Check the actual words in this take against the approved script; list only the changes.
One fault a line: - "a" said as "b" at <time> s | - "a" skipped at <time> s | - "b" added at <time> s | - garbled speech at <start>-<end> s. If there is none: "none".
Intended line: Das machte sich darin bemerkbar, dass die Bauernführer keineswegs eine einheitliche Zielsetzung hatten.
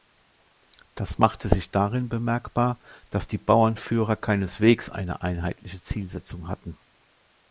none